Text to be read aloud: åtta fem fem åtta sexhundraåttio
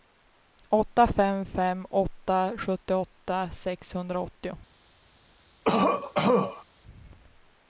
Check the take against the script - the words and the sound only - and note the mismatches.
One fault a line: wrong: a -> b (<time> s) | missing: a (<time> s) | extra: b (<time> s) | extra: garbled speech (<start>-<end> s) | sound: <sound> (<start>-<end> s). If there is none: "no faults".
extra: sjuttioåtta (2.6 s)
sound: cough (5.6-6.6 s)